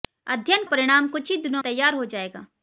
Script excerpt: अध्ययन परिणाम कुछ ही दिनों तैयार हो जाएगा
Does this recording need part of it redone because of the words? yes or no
no